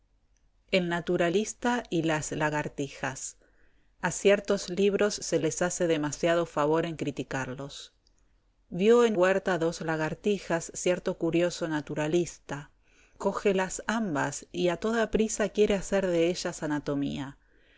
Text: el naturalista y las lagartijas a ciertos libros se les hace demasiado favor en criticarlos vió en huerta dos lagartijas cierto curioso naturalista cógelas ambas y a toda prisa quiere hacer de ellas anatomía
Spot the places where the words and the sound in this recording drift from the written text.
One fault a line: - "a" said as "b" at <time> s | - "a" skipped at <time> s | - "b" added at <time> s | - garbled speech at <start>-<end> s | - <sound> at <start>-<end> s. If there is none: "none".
none